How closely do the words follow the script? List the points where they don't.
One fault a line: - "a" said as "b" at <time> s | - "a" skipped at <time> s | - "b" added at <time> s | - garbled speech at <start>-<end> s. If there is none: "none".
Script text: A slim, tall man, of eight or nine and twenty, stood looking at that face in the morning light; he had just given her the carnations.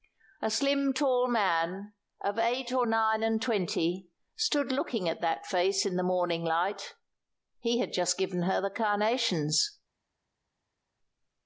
none